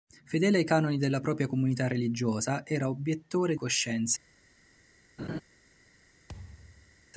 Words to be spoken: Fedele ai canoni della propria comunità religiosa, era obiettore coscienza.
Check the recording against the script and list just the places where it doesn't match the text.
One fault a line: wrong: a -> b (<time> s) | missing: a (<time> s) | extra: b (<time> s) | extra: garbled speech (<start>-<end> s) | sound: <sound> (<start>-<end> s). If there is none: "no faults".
sound: laugh (5.2-5.4 s)
sound: thud (6.3-7.1 s)